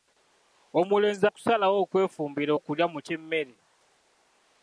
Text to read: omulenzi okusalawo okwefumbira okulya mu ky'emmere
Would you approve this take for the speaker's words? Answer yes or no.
yes